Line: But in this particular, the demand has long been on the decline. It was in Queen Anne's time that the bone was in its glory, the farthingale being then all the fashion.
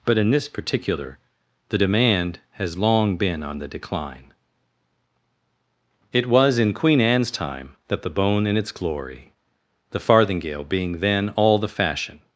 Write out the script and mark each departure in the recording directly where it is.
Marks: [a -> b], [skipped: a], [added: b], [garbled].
But in this particular, the demand has long been on the decline. It was in Queen Anne's time that the bone [skipped: was] in its glory, the farthingale being then all the fashion.